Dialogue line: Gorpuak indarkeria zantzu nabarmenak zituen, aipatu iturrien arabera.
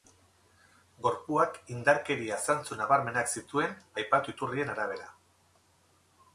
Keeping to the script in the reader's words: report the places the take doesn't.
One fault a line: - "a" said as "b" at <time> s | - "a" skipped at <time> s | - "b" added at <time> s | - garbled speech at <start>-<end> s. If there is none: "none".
none